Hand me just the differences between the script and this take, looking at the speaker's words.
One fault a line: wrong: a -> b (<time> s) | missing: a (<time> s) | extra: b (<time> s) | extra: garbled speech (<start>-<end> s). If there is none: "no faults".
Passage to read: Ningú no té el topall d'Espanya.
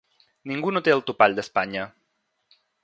no faults